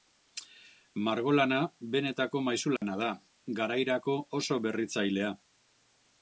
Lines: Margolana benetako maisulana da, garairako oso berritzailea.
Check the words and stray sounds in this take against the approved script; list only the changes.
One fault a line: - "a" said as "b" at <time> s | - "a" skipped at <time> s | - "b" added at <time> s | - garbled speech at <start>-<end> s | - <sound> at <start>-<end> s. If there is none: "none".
- dropout at 2.8-2.8 s